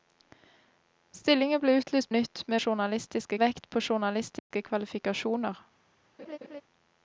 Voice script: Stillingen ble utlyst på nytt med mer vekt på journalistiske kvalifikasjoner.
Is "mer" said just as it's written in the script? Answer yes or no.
no